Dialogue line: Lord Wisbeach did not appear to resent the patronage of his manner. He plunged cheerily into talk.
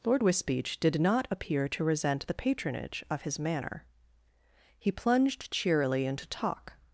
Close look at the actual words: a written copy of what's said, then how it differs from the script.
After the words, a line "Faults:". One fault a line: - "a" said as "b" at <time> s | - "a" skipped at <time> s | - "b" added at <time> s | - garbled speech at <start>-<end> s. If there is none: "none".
Lord Wisbeach did not appear to resent the patronage of his manner. He plunged cheerily into talk.
Faults:
none